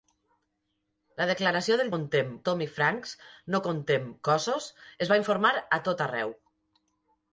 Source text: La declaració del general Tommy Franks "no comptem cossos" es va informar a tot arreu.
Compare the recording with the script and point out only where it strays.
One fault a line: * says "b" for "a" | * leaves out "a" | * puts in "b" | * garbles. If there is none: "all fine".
* says "comptem" for "general"